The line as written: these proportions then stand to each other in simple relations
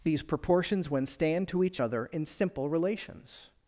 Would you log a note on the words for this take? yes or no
yes